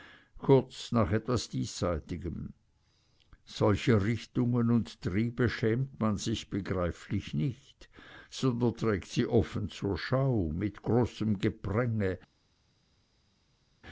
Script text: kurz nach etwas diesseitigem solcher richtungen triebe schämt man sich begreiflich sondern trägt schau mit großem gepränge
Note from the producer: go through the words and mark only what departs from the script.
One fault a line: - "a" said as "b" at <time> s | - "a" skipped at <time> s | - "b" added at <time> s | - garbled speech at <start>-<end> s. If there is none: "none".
- "und" added at 4.7 s
- "nicht" added at 7.3 s
- "sie offen zur" added at 9.1 s